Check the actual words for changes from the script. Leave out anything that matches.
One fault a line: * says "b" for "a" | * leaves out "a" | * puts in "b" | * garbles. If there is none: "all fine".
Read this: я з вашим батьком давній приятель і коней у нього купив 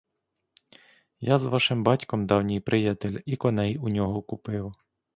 all fine